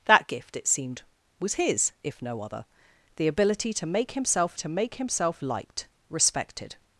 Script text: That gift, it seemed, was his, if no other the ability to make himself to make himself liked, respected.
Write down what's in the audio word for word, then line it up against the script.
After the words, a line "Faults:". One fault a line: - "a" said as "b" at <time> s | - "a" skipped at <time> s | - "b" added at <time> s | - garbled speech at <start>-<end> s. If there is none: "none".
That gift, it seemed, was his, if no other the ability to make himself to make himself liked, respected.
Faults:
none